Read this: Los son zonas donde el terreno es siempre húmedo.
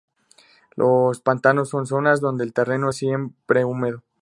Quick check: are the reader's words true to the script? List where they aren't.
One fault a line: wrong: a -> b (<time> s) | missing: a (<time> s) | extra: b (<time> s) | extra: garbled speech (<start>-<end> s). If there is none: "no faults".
extra: pantanos (1.2 s)